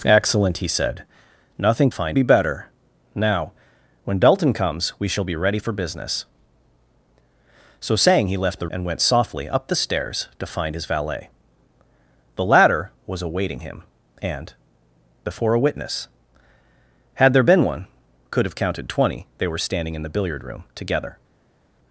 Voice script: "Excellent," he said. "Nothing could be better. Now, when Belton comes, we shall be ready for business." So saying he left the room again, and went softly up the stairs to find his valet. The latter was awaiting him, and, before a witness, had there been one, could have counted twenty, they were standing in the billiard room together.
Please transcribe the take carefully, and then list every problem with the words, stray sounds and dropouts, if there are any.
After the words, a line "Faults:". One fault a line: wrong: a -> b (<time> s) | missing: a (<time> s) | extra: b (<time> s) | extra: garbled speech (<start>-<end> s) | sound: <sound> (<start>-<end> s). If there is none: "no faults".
"Excellent," he said. "Nothing find be better. Now, when Belton comes, we shall be ready for business." So saying he left the and went softly up the stairs to find his valet. The latter was awaiting him, and, before a witness, had there been one, could have counted twenty, they were standing in the billiard room together.
Faults:
wrong: could -> find (1.9 s)
missing: room again (8.7 s)